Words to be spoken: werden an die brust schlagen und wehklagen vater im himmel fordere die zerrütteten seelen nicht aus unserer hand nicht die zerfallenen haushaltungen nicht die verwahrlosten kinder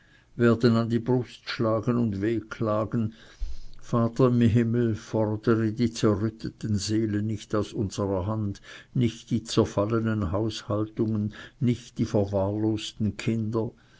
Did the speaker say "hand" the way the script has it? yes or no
yes